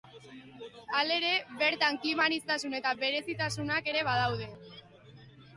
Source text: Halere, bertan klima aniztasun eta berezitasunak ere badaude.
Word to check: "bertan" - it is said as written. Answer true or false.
true